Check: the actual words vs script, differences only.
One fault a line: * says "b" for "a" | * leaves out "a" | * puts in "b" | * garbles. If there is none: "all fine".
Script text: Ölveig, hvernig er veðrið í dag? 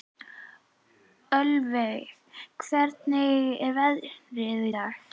all fine